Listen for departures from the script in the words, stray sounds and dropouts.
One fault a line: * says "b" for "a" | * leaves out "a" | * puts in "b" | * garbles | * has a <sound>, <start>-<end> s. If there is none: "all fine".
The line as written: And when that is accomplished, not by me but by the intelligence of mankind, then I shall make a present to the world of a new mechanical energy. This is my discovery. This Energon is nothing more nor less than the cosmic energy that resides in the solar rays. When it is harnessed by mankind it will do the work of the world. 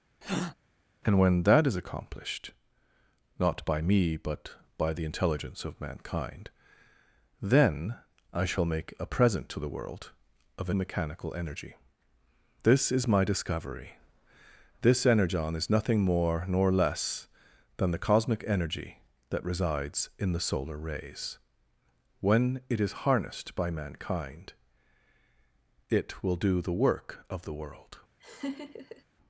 * has a breath, 0.2-0.5 s
* leaves out "new"
* has a laugh, 28.2-29.0 s